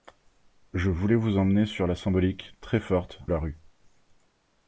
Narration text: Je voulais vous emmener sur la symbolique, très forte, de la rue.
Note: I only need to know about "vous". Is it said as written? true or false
true